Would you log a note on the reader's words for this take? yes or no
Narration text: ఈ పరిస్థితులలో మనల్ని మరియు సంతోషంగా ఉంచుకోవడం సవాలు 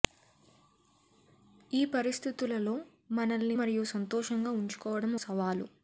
no